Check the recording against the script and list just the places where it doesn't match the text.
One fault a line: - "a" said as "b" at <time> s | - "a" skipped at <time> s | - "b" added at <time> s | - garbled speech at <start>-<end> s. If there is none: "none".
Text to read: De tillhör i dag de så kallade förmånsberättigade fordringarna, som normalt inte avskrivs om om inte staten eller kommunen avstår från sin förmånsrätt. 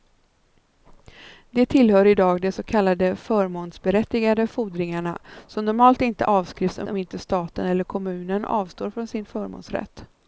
none